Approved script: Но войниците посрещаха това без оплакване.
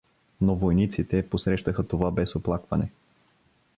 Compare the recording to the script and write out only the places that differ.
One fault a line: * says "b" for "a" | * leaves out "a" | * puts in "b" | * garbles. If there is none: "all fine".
all fine